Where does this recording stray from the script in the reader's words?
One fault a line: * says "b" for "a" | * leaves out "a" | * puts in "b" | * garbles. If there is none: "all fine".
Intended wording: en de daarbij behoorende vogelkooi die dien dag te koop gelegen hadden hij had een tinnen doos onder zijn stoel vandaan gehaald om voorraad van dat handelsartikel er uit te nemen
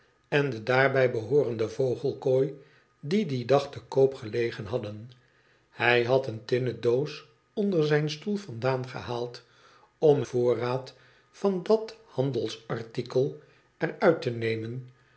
all fine